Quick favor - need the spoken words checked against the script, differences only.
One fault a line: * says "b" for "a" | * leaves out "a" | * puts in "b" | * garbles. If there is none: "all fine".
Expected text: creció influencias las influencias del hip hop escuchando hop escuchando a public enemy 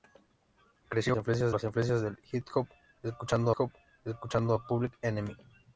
all fine